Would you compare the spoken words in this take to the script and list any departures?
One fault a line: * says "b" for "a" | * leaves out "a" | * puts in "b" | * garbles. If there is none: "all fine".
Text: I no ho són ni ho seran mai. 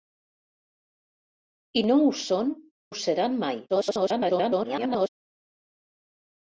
* leaves out "ni"
* garbles